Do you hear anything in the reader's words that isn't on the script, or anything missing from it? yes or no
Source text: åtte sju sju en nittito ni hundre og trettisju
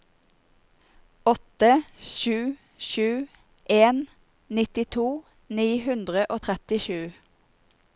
no